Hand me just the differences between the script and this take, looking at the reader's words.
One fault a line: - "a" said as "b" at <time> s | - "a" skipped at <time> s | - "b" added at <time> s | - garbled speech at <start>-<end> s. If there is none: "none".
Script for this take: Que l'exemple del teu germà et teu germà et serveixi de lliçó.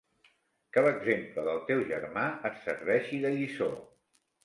- "teu germà et" skipped at 2.6 s